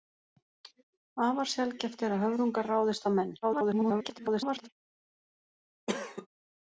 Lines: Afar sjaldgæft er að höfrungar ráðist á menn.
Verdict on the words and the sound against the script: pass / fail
fail